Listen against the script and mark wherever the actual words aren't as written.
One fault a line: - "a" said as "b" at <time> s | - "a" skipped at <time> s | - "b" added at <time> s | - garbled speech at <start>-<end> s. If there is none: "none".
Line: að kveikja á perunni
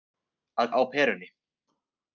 - "kveikja" skipped at 0.7 s